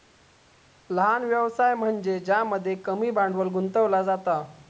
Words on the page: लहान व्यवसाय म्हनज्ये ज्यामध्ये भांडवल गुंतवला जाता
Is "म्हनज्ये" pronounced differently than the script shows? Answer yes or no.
no